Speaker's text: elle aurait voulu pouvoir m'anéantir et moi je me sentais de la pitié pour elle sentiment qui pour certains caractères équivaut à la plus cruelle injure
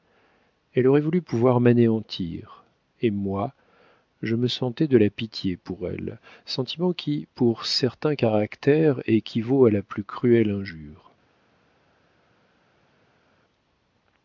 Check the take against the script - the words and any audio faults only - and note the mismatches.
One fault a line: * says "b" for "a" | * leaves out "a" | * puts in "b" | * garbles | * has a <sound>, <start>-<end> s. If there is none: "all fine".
all fine